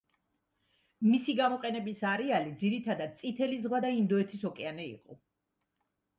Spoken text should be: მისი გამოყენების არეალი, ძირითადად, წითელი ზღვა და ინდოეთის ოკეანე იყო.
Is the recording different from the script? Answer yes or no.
no